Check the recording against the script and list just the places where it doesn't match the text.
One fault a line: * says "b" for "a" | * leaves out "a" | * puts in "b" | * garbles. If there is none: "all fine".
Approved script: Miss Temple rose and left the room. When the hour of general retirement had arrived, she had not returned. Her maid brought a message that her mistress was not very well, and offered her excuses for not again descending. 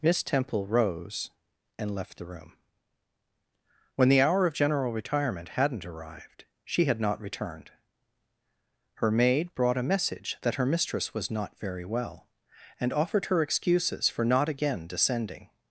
* says "hadn't" for "had"